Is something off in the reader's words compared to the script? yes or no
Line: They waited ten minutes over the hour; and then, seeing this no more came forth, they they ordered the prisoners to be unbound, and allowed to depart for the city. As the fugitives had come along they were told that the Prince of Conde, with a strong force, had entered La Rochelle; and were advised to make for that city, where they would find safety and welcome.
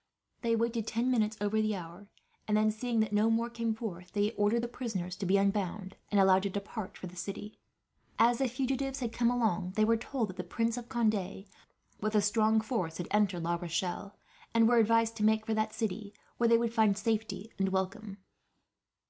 yes